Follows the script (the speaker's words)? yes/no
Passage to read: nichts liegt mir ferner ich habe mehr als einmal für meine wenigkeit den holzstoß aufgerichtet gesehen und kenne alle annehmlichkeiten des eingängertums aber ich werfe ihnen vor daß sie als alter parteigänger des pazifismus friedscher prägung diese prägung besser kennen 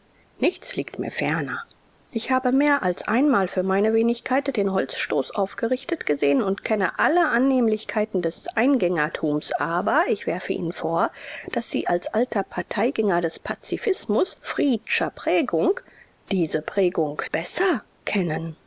yes